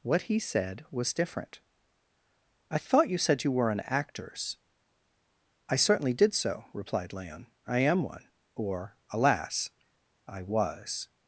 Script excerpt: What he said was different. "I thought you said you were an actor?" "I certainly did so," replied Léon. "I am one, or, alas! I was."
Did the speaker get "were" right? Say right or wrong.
right